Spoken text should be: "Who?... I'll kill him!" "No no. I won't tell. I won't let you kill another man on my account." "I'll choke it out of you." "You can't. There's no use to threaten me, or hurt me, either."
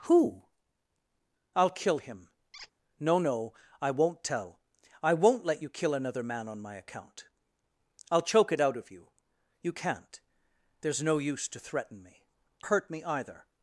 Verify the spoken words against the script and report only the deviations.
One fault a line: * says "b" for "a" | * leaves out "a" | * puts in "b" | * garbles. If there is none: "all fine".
* leaves out "or"